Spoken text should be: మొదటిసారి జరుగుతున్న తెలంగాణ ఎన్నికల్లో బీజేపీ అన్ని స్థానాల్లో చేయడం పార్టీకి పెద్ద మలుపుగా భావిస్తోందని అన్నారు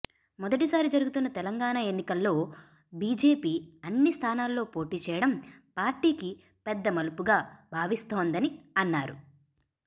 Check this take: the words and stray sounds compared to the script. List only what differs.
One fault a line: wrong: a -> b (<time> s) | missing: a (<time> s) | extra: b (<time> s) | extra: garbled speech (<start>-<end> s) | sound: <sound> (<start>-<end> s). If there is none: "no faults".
extra: పోటీ (4.7 s)